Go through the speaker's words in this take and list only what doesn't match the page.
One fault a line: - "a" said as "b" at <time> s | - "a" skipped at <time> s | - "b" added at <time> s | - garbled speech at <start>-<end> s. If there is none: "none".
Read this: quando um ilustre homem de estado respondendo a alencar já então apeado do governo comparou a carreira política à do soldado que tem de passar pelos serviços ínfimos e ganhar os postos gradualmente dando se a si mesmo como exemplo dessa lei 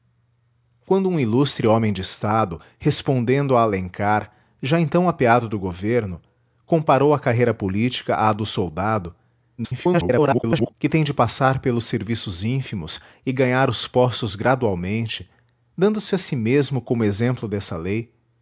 - garbled speech at 9.6-10.7 s